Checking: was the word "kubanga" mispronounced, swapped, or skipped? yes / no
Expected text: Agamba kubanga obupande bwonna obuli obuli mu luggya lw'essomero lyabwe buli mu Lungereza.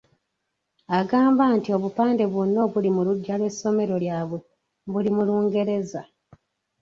yes